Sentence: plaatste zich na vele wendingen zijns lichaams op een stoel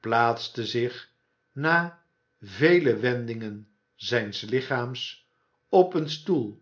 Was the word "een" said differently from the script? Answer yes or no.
no